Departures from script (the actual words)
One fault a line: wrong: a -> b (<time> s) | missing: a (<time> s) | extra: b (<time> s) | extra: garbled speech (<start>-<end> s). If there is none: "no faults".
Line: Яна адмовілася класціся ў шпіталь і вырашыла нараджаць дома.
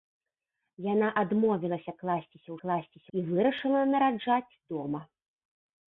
wrong: шпіталь -> класціся (2.7 s)